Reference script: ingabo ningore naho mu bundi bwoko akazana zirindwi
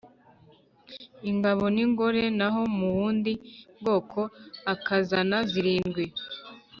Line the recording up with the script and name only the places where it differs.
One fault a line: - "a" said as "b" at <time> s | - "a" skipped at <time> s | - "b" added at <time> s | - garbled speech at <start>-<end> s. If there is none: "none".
none